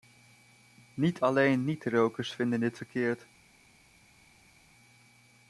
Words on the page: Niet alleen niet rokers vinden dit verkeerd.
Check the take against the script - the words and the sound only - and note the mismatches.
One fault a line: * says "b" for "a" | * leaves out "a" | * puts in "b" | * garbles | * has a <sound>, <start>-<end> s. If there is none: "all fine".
all fine